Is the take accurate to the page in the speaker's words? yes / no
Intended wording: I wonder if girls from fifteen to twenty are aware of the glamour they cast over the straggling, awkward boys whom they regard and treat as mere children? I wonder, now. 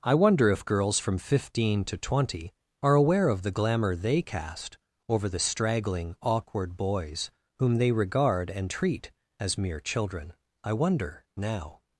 yes